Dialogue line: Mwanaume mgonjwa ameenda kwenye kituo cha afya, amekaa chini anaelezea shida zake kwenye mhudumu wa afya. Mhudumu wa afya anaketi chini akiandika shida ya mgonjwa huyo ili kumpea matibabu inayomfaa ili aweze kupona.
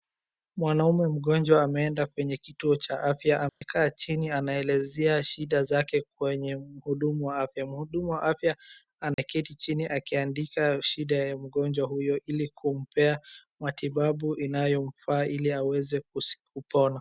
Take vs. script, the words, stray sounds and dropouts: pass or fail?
fail